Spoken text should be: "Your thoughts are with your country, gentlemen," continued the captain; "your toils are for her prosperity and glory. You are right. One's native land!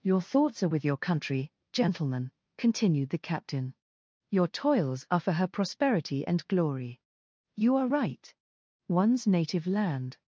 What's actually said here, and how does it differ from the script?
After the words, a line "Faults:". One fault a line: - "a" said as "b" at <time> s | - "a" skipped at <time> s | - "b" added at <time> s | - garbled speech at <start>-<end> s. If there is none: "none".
"Your thoughts are with your country, gentlemen," continued the captain; "your toils are for her prosperity and glory. You are right. One's native land!
Faults:
none